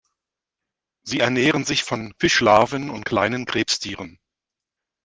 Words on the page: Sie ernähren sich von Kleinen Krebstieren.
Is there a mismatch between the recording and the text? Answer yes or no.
yes